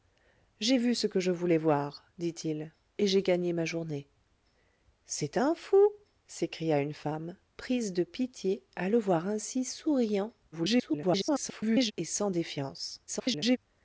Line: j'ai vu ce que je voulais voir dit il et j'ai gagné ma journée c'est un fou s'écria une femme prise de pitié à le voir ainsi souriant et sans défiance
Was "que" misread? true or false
false